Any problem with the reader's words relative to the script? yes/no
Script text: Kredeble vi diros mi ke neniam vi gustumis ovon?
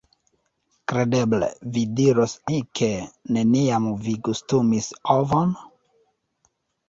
no